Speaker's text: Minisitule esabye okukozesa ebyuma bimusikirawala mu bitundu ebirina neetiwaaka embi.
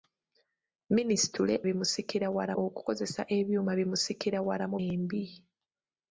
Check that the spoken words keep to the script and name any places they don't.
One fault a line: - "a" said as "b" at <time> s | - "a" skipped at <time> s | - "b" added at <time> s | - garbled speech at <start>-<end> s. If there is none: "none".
- "esabye" said as "bimusikirawala" at 1.7 s
- "bitundu ebirina neetiwaaka" skipped at 4.8 s